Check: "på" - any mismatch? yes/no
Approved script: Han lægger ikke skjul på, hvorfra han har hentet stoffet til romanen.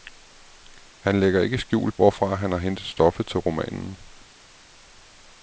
yes